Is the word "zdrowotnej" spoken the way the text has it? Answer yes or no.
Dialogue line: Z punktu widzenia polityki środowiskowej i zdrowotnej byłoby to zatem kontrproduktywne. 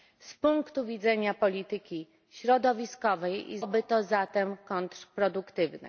no